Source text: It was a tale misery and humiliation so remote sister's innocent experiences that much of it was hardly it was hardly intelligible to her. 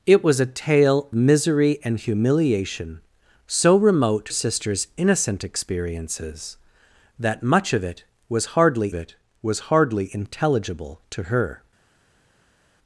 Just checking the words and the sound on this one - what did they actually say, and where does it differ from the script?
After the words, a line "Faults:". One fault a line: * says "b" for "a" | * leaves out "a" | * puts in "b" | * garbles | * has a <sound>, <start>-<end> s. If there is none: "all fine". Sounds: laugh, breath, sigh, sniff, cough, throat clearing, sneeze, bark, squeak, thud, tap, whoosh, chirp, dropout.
It was a tale misery and humiliation so remote sister's innocent experiences that much of it was hardly it was hardly intelligible to her.
Faults:
all fine